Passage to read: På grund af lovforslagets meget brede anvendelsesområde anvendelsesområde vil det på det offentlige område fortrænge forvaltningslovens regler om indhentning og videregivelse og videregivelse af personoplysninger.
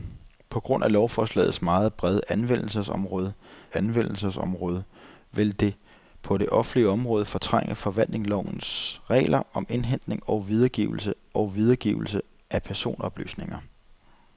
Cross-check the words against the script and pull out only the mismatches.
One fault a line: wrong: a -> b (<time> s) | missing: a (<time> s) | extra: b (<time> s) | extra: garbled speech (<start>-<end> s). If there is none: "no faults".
no faults